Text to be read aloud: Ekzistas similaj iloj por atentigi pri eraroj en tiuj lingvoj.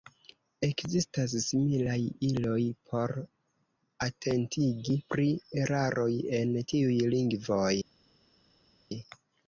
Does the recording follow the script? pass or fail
pass